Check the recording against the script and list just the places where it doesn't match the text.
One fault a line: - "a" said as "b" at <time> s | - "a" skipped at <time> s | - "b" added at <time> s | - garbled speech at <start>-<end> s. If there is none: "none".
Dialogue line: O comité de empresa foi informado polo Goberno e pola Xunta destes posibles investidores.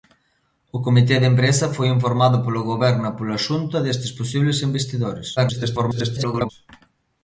- garbled speech at 5.4-6.5 s